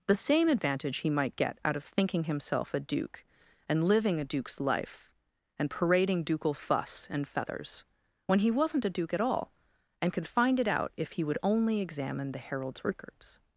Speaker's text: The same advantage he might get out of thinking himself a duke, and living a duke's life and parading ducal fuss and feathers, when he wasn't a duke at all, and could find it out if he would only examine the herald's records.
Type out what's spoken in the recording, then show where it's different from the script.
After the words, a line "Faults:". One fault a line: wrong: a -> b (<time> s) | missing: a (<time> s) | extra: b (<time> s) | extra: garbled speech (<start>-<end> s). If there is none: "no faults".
The same advantage he might get out of thinking himself a duke, and living a duke's life and parading ducal fuss and feathers, when he wasn't a duke at all, and could find it out if he would only examine the herald's records.
Faults:
no faults